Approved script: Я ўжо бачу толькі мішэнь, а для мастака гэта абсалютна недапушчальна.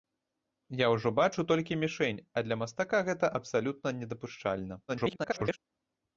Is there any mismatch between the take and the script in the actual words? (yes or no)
yes